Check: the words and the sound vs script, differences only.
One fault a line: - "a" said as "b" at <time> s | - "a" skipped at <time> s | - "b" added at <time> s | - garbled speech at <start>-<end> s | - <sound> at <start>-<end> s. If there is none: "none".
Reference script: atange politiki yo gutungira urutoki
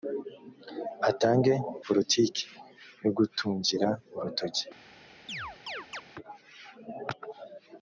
- chirp at 5.3-6.0 s